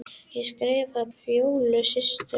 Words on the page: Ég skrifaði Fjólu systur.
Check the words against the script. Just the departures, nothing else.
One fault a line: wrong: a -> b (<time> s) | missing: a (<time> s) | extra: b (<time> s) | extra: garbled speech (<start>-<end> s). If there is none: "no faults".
no faults